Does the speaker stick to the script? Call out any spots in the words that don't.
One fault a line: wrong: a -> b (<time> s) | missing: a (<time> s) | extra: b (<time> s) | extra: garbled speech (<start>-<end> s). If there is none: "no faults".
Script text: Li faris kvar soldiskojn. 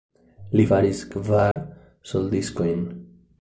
no faults